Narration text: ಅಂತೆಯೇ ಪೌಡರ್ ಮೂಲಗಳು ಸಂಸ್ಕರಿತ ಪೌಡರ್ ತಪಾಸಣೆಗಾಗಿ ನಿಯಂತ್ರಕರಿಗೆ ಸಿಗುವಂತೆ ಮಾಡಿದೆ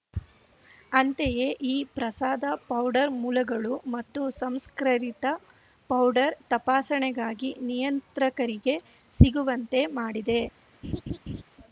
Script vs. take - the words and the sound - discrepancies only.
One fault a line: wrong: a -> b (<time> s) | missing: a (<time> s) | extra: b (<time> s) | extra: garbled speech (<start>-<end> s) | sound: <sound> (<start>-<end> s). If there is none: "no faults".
extra: ಈ ಪ್ರಸಾದ (1.6 s)
extra: ಮತ್ತು (3.9 s)
sound: laugh (10.8-11.4 s)